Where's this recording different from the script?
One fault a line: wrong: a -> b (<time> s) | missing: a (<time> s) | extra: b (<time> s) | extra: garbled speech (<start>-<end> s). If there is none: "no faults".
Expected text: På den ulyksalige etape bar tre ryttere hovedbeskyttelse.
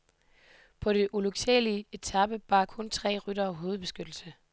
extra: kun (2.6 s)